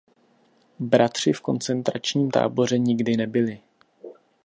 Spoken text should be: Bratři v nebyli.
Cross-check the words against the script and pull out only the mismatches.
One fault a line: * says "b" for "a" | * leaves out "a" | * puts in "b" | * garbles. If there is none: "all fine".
* puts in "koncentračním táboře nikdy"